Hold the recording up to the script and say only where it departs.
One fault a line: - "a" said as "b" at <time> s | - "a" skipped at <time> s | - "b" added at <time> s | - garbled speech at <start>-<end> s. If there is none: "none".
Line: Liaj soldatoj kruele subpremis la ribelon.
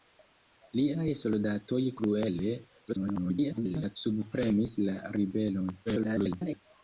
- garbled speech at 2.9-4.0 s
- garbled speech at 5.9-6.6 s